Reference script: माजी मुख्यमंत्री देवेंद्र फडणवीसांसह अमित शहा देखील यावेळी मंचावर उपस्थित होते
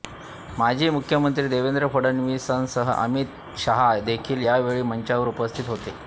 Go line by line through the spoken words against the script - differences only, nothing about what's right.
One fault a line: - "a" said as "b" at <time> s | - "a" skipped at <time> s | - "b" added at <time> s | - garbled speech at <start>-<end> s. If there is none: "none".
none